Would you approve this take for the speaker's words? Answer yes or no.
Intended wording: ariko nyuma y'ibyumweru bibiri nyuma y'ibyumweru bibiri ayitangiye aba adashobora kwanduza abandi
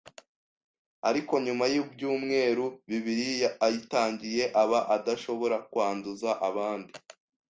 no